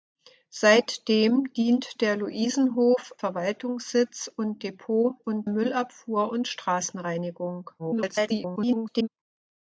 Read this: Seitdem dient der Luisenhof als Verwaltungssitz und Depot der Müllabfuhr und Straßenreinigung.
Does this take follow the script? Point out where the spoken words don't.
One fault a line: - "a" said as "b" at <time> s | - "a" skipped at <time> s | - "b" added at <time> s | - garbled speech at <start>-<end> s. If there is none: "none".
- "als" skipped at 3.1 s
- "der" said as "und" at 5.2 s
- garbled speech at 7.8-9.1 s